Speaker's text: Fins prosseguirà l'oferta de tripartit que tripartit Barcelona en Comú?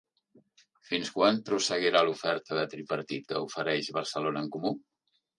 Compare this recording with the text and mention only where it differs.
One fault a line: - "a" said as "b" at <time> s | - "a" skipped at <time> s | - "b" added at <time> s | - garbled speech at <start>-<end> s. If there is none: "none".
- "quan" added at 1.2 s
- "tripartit" said as "ofereix" at 3.5 s